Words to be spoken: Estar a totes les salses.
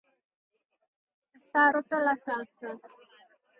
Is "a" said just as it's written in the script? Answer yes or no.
no